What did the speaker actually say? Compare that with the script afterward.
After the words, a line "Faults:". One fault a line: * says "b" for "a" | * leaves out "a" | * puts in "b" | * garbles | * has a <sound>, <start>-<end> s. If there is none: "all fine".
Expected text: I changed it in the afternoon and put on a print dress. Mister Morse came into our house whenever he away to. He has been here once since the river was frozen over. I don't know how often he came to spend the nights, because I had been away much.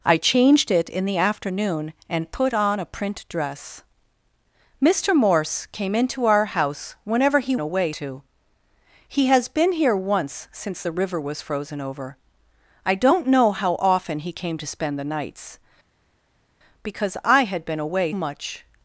I changed it in the afternoon and put on a print dress. Mister Morse came into our house whenever he away to. He has been here once since the river was frozen over. I don't know how often he came to spend the nights, because I had been away much.
Faults:
all fine